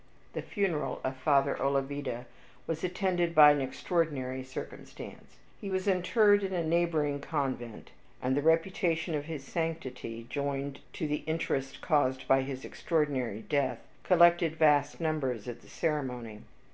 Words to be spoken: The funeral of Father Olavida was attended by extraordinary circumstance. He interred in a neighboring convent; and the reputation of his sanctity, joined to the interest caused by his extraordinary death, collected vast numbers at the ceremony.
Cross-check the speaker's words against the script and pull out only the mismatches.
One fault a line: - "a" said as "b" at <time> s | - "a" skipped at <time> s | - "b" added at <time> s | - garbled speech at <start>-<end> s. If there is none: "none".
- "an" added at 3.5 s
- "was" added at 5.7 s